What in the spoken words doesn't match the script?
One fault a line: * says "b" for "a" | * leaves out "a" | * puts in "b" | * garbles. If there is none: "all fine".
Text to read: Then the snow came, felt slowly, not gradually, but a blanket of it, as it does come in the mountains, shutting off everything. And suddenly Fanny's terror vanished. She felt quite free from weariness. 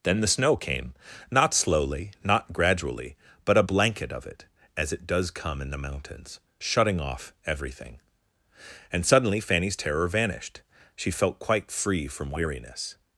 * says "not" for "felt"